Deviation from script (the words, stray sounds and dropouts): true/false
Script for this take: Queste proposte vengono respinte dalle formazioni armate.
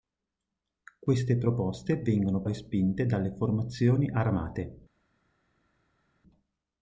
false